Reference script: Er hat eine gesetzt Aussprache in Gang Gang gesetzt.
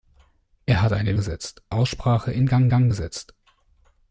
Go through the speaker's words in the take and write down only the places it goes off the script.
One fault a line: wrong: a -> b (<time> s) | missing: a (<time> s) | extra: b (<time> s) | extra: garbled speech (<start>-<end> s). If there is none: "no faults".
no faults